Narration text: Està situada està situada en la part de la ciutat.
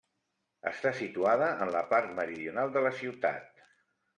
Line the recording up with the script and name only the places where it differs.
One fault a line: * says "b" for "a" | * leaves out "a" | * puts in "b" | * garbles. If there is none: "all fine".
* leaves out "està situada"
* puts in "meridional"